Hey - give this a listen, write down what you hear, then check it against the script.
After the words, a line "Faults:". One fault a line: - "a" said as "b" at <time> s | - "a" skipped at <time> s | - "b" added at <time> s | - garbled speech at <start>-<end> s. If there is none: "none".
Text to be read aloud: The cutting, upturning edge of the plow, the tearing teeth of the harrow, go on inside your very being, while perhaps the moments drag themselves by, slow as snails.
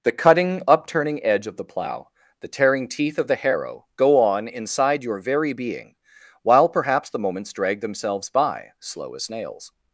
The cutting, upturning edge of the plow, the tearing teeth of the harrow, go on inside your very being, while perhaps the moments drag themselves by, slow as snails.
Faults:
none